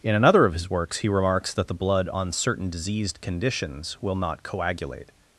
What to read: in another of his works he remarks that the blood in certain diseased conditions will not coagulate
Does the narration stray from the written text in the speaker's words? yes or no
yes